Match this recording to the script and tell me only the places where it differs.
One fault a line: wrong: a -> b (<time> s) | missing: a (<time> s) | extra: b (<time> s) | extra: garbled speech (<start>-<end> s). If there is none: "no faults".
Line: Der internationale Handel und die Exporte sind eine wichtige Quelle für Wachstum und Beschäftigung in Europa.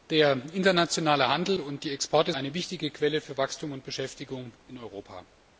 missing: sind (2.3 s)